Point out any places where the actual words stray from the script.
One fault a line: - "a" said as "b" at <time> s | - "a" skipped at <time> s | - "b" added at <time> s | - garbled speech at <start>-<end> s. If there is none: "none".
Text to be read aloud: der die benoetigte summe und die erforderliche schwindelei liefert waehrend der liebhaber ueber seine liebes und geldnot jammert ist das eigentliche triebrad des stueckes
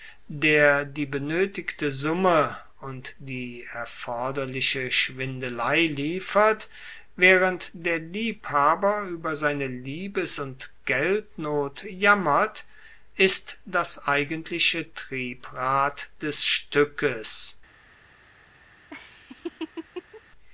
none